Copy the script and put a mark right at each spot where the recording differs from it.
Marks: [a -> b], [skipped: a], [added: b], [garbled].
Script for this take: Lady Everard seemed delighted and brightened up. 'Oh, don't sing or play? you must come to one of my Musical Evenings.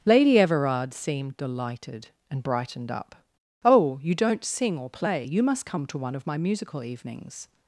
Lady Everard seemed delighted and brightened up. 'Oh, [added: you] don't sing or play? you must come to one of my Musical Evenings.